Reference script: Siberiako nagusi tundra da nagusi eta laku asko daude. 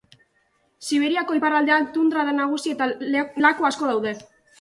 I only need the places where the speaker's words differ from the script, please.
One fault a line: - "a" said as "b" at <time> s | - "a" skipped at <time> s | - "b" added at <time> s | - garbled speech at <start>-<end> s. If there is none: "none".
- "nagusi" said as "iparraldean" at 1.4 s